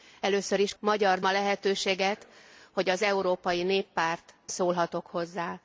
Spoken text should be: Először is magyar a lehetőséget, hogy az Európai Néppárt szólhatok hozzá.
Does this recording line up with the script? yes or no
yes